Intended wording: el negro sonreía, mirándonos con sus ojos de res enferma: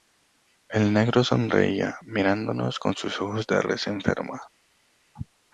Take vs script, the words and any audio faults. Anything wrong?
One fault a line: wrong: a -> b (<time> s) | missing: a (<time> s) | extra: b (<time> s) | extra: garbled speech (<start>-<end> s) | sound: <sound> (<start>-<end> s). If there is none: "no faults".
no faults